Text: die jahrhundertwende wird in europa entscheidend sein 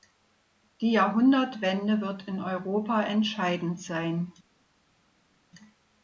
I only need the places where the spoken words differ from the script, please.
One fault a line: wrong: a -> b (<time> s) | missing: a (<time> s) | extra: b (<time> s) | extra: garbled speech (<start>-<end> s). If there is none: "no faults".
no faults